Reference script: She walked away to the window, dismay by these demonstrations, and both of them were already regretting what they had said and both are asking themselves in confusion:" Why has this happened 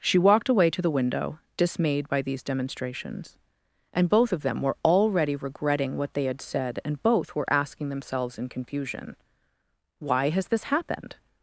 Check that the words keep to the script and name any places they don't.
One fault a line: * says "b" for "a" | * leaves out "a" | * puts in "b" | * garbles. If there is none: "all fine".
* says "dismayed" for "dismay"
* says "were" for "are"